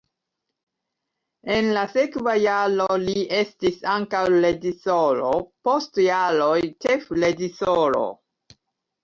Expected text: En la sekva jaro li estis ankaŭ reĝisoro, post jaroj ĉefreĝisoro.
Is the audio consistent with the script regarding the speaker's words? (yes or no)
yes